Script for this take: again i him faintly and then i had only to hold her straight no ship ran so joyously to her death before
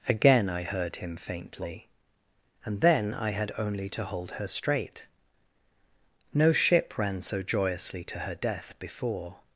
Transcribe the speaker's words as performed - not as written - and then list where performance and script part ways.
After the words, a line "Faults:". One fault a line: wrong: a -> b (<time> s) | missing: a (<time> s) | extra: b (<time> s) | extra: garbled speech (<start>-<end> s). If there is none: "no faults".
again i heard him faintly and then i had only to hold her straight no ship ran so joyously to her death before
Faults:
extra: heard (0.6 s)